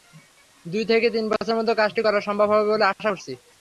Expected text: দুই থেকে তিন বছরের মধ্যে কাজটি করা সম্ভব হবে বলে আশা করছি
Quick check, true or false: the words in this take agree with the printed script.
true